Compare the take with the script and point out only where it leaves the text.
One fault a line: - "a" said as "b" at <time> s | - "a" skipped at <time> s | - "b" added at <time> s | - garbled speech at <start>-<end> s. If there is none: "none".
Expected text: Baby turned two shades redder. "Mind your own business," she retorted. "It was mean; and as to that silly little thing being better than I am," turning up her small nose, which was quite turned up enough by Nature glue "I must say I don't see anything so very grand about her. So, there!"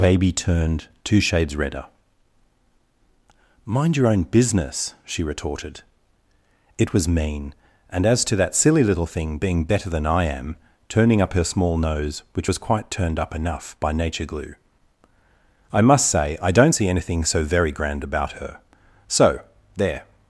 none